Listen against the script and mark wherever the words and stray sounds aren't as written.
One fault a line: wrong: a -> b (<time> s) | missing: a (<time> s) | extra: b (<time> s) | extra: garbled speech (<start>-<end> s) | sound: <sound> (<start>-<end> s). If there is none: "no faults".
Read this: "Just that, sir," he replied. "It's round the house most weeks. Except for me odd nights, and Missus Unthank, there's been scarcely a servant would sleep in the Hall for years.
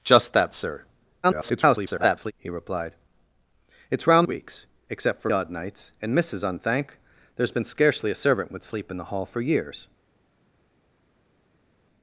extra: garbled speech (1.2-2.3 s)
missing: the house most (4.3 s)
missing: me (5.3 s)